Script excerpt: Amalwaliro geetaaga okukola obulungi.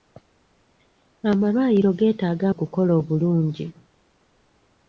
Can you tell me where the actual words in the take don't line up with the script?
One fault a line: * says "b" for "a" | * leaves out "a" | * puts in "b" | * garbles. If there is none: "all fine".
all fine